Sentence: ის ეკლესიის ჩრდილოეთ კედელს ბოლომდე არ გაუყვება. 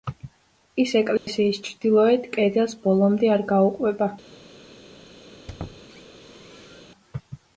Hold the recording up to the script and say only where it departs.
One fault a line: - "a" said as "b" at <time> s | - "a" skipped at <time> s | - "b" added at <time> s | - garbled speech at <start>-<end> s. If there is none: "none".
none